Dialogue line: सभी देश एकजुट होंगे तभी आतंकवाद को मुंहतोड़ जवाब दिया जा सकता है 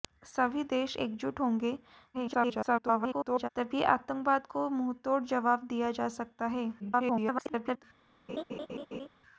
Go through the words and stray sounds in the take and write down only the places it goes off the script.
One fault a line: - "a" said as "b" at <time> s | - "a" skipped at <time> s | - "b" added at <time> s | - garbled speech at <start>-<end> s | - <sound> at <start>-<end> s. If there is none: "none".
- garbled speech at 2.1-3.5 s
- garbled speech at 6.8-7.8 s
- laugh at 8.3-9.1 s